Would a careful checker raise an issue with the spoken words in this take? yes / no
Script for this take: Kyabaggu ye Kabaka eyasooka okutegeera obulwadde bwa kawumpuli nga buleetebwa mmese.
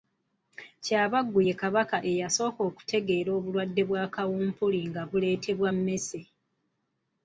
no